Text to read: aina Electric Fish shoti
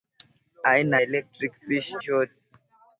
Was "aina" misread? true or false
false